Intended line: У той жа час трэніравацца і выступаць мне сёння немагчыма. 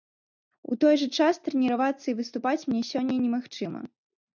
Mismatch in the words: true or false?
false